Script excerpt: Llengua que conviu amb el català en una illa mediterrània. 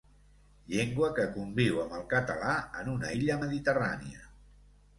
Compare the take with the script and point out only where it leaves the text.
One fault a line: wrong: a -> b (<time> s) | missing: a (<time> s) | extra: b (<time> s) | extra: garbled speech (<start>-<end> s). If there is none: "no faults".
no faults